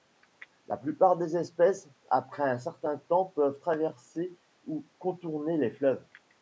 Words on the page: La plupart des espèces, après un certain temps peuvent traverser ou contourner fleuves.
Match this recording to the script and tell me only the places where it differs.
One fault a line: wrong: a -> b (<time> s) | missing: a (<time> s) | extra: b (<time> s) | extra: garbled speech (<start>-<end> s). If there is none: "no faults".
extra: les (5.6 s)